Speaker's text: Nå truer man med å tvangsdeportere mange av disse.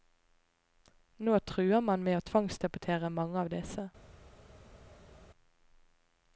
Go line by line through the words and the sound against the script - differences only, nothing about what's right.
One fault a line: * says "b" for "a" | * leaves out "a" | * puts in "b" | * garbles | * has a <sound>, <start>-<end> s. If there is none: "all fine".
all fine